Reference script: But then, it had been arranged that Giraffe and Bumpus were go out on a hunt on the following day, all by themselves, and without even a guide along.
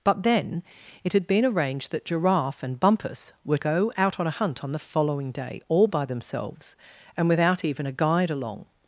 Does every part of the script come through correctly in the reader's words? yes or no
yes